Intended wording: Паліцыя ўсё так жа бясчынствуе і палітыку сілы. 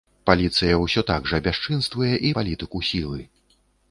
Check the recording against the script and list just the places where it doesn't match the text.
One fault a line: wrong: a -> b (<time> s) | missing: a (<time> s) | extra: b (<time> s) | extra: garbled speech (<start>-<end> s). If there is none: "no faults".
no faults